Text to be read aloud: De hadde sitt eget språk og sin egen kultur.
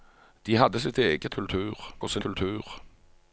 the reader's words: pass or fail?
fail